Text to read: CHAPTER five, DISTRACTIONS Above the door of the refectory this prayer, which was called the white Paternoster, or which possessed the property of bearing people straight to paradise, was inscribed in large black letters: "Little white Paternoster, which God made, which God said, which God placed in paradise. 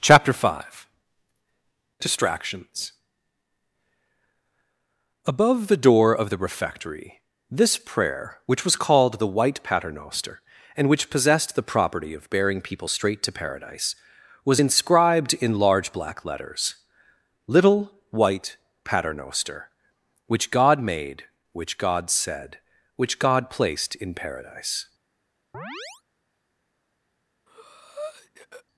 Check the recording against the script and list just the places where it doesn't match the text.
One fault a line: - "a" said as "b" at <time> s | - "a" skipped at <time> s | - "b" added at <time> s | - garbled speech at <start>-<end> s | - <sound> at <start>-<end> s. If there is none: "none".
- "or" said as "and" at 10.8 s
- chirp at 25.5-26.0 s
- breath at 27.5-28.6 s